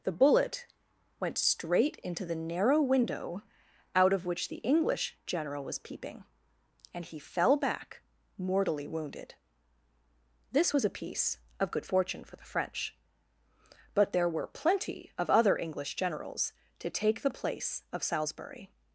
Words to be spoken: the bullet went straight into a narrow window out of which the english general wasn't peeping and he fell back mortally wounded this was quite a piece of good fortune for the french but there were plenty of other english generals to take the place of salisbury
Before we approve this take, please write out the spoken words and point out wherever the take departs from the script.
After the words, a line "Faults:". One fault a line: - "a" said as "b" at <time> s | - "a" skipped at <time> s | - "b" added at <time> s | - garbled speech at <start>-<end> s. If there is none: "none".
the bullet went straight into the narrow window out of which the english general was peeping and he fell back mortally wounded this was a piece of good fortune for the french but there were plenty of other english generals to take the place of salisbury
Faults:
- "a" said as "the" at 2.2 s
- "wasn't" said as "was" at 5.6 s
- "quite" skipped at 10.8 s